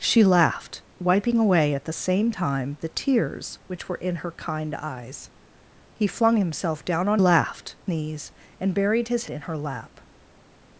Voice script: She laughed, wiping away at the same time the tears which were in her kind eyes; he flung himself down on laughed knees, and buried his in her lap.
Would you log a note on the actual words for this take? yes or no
no